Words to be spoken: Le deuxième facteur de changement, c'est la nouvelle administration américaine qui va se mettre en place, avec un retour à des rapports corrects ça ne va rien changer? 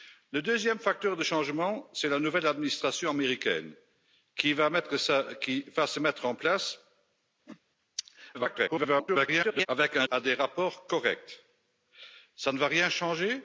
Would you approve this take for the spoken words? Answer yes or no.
no